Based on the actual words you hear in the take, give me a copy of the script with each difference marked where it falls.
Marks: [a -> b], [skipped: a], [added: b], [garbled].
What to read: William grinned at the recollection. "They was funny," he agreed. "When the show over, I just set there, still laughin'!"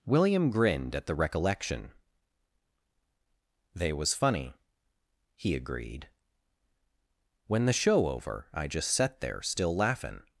William grinned at the recollection. "They was funny," he agreed. "When the show over, I just set there, still laughin'!"